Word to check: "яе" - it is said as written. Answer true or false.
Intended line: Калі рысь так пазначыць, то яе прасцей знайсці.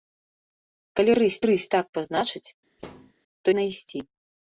false